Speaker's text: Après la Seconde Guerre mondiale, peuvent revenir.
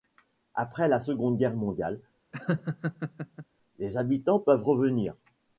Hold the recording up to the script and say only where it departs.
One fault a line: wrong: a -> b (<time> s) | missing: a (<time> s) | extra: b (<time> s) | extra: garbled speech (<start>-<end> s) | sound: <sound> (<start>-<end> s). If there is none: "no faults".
sound: laugh (2.3-3.5 s)
extra: les habitants (3.8 s)